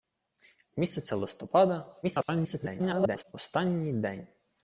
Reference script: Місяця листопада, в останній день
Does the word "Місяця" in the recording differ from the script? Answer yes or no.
no